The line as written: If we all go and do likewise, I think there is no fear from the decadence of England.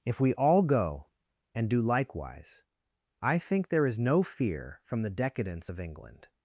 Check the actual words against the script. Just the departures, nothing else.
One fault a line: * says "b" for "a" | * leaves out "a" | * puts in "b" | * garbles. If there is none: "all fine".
all fine